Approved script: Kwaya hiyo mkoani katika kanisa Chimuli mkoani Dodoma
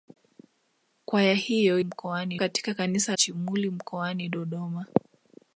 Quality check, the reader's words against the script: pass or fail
pass